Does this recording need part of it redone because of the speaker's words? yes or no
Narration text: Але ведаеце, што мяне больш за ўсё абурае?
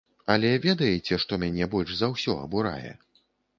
no